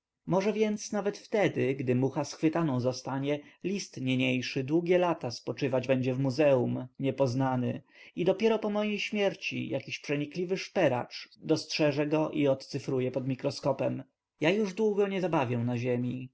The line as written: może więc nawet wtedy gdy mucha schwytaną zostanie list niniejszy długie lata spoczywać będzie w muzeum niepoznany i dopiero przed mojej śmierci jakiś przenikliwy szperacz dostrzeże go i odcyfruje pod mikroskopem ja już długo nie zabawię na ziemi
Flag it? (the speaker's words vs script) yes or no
yes